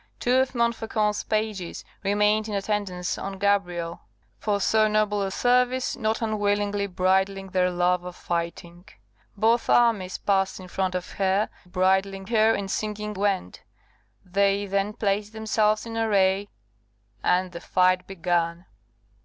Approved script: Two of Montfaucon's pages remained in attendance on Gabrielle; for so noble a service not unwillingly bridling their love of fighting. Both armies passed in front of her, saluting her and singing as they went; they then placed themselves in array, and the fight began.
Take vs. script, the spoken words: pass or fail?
fail